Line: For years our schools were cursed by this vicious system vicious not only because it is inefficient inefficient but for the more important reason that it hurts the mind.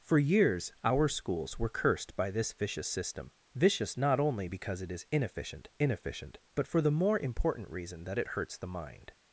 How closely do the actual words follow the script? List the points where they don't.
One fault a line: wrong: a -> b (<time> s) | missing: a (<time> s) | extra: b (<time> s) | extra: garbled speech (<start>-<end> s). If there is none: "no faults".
no faults